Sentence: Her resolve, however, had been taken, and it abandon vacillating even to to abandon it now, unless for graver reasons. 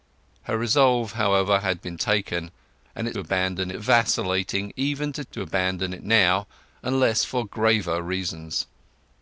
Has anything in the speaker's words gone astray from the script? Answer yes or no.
no